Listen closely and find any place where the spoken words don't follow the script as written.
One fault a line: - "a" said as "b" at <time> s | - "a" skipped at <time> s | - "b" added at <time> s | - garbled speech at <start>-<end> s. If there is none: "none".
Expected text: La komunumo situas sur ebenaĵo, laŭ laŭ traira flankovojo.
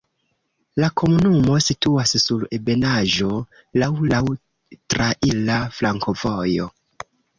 none